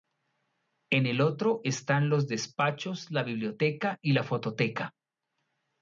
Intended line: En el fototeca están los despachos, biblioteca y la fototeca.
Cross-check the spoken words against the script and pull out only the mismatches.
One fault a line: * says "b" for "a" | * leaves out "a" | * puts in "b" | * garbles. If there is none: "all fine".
* says "otro" for "fototeca"
* puts in "la"